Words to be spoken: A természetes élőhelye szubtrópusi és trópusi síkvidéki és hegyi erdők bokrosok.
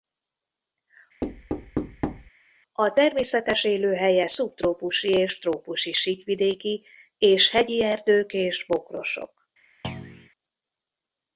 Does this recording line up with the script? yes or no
no